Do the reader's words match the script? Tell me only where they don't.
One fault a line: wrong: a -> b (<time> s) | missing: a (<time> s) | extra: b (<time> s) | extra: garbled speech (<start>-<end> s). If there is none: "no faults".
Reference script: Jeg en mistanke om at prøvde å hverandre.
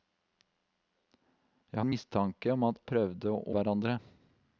no faults